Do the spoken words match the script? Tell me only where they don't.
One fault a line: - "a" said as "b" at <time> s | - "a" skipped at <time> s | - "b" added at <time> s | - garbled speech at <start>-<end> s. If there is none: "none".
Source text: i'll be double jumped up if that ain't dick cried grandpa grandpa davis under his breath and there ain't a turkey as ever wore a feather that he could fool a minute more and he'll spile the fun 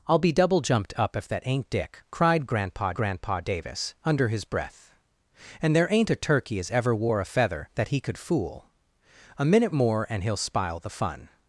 none